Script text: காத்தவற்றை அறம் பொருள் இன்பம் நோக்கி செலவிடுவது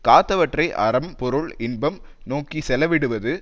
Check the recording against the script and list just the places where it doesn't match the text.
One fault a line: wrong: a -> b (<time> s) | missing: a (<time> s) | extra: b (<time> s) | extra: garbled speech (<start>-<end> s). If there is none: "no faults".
no faults